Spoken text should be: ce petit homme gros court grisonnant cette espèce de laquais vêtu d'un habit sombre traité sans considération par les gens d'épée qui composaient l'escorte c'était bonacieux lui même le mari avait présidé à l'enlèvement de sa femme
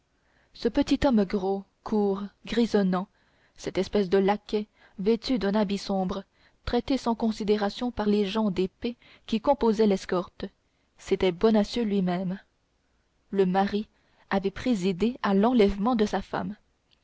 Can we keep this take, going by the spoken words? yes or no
yes